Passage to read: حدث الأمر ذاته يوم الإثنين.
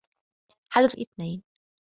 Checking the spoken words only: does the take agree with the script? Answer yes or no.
no